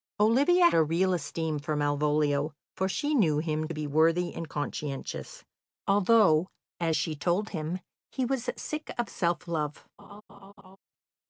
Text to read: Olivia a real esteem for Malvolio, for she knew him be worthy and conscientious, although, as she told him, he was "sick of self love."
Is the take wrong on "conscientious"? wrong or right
right